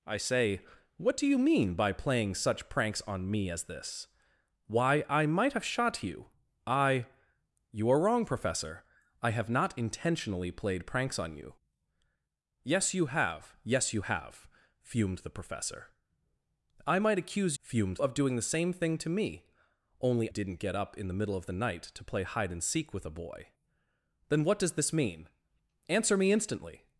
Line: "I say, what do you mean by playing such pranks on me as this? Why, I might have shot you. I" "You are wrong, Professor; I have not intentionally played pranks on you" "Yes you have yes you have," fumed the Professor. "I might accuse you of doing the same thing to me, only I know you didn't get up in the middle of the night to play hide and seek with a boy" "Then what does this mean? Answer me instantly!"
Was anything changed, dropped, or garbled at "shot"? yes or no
no